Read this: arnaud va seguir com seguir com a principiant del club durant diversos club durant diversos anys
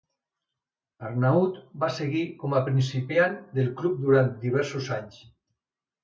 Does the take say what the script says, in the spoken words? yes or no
no